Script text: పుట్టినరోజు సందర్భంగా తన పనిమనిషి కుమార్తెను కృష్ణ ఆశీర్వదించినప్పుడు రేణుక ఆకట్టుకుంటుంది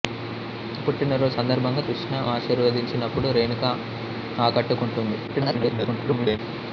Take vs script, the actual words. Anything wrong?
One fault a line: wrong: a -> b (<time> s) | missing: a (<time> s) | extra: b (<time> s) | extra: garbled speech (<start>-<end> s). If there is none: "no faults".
missing: తన పనిమనిషి కుమార్తెను (1.8 s)
extra: garbled speech (5.3-6.4 s)